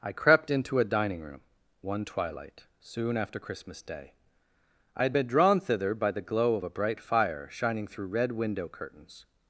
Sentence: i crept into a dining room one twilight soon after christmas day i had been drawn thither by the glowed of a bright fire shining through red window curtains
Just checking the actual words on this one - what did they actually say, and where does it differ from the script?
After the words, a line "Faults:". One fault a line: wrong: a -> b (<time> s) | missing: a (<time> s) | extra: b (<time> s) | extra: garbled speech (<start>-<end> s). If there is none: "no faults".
i crept into a dining room one twilight soon after christmas day i had been drawn thither by the glow of a bright fire shining through red window curtains
Faults:
wrong: glowed -> glow (6.2 s)